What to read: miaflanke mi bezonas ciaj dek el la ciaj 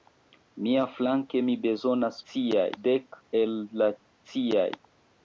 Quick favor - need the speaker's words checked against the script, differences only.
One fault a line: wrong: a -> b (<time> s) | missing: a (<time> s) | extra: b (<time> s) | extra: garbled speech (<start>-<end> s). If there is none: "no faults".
no faults